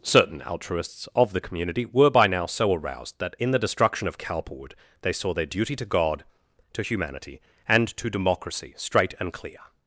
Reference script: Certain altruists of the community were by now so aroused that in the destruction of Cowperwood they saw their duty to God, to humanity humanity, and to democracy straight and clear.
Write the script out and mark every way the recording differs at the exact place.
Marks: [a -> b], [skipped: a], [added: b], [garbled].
Certain altruists of the community were by now so aroused that in the destruction of Cowperwood they saw their duty to God, to humanity [skipped: humanity,] and to democracy straight and clear.